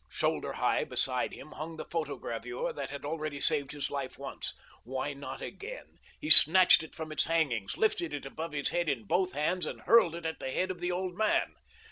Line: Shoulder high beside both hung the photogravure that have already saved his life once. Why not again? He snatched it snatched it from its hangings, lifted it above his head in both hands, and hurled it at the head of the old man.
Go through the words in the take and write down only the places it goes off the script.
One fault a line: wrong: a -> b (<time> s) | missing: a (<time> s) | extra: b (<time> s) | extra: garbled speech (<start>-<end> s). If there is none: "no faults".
wrong: both -> him (1.3 s)
wrong: have -> had (2.9 s)
missing: snatched it (7.0 s)